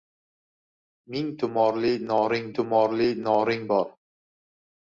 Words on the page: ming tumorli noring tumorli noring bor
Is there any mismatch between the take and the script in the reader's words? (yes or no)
no